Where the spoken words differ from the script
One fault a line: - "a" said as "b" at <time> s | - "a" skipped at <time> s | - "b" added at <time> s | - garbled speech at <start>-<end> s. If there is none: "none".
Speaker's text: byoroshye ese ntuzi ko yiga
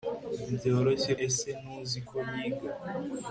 none